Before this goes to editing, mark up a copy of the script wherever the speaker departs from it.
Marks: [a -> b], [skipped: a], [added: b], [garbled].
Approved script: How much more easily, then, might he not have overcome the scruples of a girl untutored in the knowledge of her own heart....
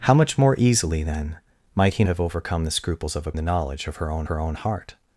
How much more easily, then, might he [skipped: not] have overcome the scruples of a [skipped: girl untutored in] the knowledge of her own [added: her own] heart....